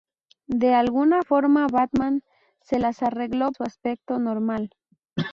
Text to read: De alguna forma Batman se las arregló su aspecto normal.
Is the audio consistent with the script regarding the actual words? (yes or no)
yes